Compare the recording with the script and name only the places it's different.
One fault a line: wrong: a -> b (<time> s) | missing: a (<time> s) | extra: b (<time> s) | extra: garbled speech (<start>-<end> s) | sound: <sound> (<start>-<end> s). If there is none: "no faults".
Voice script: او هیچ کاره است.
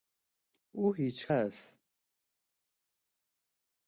missing: کاره (1.3 s)